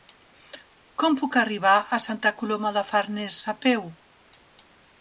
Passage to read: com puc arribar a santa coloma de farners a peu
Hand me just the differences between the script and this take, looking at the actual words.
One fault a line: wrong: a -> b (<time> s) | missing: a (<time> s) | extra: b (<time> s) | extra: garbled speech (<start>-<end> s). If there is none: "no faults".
no faults